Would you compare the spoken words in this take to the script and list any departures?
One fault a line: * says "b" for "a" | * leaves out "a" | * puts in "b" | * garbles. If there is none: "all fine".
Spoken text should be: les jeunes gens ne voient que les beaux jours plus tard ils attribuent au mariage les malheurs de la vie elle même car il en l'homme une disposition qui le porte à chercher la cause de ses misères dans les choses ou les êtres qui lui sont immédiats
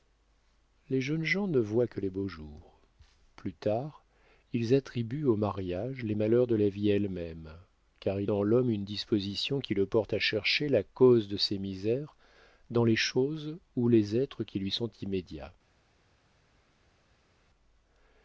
all fine